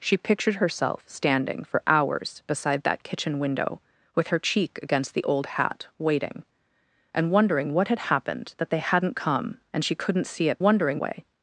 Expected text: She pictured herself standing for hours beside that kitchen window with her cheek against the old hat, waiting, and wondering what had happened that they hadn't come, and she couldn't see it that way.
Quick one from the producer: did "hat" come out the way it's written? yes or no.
yes